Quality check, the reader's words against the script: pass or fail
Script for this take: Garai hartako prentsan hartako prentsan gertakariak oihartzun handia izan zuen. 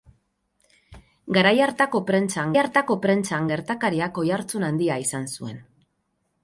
pass